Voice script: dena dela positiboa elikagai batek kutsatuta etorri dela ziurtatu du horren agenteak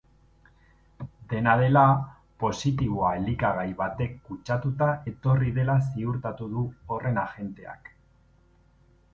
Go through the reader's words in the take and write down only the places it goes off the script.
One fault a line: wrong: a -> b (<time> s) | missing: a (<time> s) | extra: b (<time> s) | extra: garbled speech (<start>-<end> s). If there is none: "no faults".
no faults